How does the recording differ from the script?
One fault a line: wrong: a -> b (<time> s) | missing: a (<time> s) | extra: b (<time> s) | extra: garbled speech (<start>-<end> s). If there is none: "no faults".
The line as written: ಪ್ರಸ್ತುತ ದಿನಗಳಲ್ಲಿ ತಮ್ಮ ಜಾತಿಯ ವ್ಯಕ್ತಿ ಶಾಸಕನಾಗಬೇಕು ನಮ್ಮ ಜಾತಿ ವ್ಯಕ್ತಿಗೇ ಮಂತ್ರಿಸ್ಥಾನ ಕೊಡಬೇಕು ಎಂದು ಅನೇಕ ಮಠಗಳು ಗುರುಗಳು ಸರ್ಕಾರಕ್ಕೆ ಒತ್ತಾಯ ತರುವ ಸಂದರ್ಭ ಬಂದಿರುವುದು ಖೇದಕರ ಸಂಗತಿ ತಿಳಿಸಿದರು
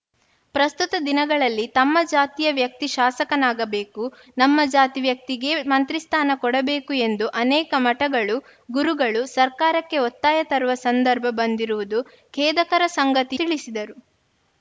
no faults